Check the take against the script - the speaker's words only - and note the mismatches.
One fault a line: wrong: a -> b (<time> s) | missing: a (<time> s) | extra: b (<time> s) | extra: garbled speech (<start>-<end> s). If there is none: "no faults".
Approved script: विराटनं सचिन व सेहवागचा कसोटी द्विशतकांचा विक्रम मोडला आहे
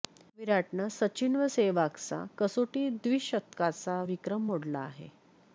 no faults